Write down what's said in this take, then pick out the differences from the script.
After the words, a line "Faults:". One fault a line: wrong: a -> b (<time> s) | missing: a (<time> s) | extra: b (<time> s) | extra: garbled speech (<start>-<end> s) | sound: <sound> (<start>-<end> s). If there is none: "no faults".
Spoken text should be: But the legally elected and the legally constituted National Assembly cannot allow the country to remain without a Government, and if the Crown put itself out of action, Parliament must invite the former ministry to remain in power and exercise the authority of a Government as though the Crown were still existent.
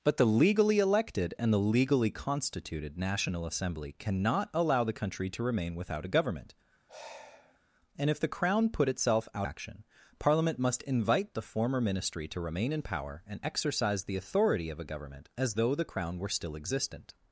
But the legally elected and the legally constituted National Assembly cannot allow the country to remain without a Government, and if the Crown put itself out action, Parliament must invite the former ministry to remain in power and exercise the authority of a Government as though the Crown were still existent.
Faults:
sound: sigh (6.9-7.6 s)
missing: of (9.5 s)